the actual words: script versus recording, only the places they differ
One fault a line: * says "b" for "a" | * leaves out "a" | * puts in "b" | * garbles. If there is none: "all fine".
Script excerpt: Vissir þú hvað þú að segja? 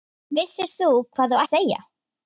all fine